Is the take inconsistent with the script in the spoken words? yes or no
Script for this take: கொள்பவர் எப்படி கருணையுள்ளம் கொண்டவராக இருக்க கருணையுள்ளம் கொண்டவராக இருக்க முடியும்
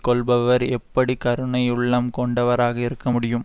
yes